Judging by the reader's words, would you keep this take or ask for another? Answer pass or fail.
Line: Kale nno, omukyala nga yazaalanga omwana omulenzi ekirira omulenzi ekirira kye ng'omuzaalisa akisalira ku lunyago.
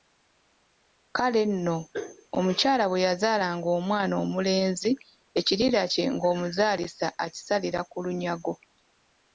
fail